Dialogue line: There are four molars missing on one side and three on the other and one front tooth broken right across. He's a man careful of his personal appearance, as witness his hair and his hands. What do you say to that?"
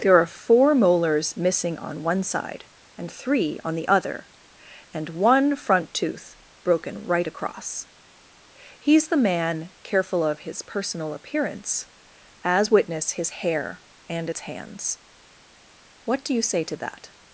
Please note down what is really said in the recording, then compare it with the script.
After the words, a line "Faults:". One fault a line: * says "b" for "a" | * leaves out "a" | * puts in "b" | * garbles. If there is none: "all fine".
There are four molars missing on one side and three on the other and one front tooth broken right across. He's the man careful of his personal appearance, as witness his hair and its hands. What do you say to that?"
Faults:
* says "the" for "a"
* says "its" for "his"